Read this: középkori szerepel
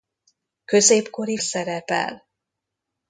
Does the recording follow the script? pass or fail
pass